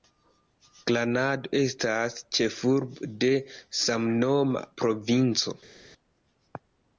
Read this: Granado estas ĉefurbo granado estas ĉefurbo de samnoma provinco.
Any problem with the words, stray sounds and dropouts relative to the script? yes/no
yes